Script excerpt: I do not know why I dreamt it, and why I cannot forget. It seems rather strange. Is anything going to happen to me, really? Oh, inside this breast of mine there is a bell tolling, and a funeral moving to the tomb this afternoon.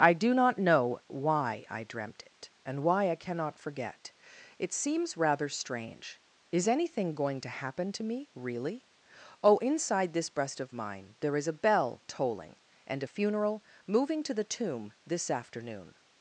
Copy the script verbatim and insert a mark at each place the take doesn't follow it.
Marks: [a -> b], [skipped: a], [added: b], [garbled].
I do not know why I dreamt it, and why I cannot forget. It seems rather strange. Is anything going to happen to me, really? Oh, inside this breast of mine there is a bell tolling, and a funeral moving to the tomb this afternoon.